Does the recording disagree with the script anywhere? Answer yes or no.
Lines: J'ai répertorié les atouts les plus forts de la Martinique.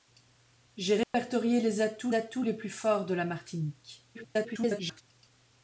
yes